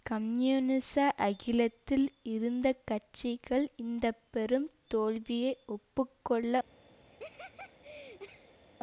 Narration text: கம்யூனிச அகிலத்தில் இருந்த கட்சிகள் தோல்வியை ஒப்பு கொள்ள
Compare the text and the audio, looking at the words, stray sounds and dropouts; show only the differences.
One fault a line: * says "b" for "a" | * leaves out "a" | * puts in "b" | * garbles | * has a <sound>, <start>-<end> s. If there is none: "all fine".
* puts in "இந்த பெரும்"
* has a laugh, 7.1-8.6 s